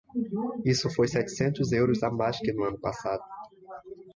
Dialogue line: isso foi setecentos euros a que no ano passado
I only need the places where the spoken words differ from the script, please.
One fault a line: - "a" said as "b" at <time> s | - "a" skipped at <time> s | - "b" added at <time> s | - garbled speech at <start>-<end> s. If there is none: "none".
- "mais" added at 2.1 s